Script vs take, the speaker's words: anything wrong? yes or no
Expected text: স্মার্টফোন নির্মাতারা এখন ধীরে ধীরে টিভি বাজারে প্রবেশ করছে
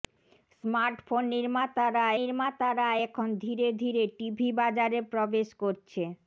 yes